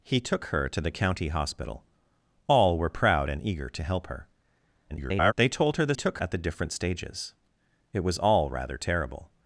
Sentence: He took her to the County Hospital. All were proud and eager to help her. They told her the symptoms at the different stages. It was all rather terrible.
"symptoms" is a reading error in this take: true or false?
true